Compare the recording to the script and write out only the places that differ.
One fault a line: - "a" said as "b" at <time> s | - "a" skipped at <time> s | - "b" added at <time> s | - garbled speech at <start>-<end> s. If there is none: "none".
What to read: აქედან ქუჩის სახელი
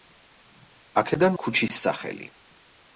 none